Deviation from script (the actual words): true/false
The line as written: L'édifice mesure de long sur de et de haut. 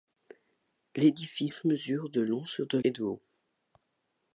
false